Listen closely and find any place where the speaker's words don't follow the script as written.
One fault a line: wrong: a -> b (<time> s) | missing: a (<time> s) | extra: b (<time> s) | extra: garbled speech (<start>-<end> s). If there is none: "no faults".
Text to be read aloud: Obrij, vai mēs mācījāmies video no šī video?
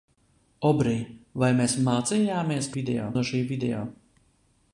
no faults